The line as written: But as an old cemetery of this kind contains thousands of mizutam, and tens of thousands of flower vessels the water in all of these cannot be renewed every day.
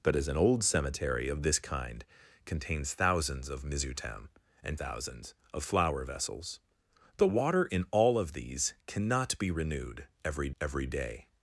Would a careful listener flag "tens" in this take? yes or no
yes